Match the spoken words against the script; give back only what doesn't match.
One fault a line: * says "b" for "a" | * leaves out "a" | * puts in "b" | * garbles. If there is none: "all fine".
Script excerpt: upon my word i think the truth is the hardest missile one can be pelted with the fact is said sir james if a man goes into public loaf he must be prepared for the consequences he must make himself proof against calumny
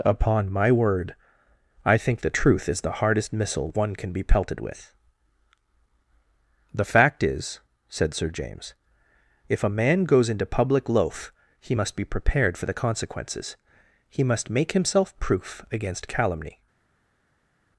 all fine